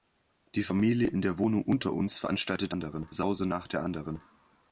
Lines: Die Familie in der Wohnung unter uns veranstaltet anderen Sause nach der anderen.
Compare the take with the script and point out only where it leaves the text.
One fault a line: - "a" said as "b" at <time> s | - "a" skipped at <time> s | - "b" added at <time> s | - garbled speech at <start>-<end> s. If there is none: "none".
none